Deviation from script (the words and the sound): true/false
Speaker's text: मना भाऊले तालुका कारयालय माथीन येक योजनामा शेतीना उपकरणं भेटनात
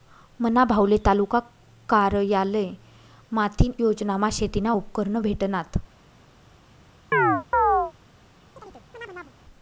true